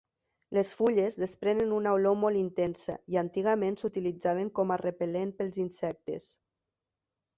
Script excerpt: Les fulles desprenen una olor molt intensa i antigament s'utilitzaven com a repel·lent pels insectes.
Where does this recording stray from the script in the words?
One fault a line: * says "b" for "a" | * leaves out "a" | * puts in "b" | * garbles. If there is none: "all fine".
all fine